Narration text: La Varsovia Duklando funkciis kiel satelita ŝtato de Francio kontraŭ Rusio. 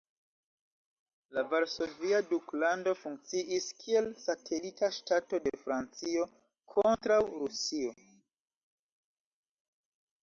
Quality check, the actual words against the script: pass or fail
pass